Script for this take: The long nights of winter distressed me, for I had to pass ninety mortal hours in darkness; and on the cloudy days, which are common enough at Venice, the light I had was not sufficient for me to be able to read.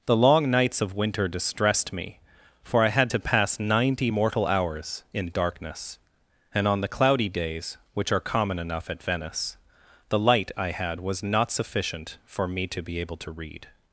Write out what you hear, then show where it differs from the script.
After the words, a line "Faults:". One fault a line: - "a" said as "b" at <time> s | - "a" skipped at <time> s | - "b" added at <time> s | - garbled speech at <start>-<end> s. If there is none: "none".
The long nights of winter distressed me, for I had to pass ninety mortal hours in darkness; and on the cloudy days, which are common enough at Venice, the light I had was not sufficient for me to be able to read.
Faults:
none